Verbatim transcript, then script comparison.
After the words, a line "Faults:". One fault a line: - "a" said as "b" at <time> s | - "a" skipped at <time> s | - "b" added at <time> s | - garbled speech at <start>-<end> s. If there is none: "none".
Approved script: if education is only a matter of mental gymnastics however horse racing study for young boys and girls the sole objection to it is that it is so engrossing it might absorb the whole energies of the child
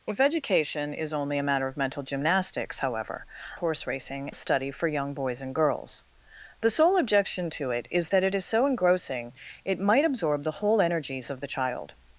if education is only a matter of mental gymnastics however horse racing study for young boys and girls the sole objection to it is that it is so engrossing it might absorb the whole energies of the child
Faults:
none